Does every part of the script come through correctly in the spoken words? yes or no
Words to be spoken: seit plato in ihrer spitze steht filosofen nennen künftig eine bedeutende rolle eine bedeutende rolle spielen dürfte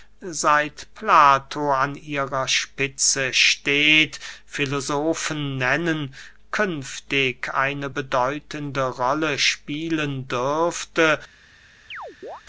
no